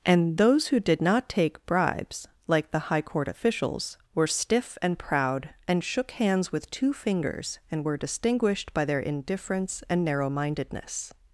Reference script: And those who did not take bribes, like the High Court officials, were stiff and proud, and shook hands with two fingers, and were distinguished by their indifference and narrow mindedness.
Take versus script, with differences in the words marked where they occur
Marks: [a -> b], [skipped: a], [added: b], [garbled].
And those who did not take bribes, like the High Court officials, were stiff and proud, and shook hands with two fingers, and were distinguished by their indifference and narrow mindedness.